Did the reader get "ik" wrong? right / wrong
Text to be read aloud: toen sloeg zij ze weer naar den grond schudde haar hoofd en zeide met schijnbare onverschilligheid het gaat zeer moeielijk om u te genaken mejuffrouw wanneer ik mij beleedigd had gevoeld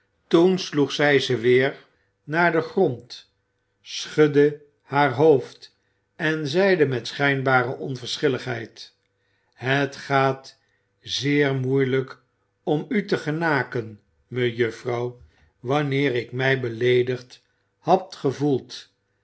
right